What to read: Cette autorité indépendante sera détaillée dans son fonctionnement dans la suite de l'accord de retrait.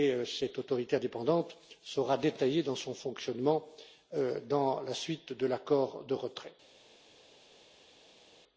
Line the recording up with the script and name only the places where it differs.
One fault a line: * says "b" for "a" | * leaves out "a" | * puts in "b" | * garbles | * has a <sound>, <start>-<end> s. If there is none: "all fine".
all fine